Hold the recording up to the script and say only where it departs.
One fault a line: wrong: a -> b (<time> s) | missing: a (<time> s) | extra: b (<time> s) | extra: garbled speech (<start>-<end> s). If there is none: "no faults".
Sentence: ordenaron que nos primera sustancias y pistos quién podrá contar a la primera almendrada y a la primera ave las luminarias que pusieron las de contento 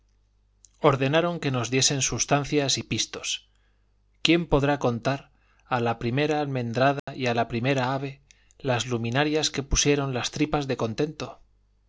wrong: primera -> diesen (1.7 s)
extra: tripas (10.3 s)